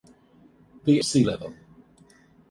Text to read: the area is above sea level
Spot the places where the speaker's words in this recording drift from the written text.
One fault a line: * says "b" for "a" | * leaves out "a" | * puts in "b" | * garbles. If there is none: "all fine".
* leaves out "area is above"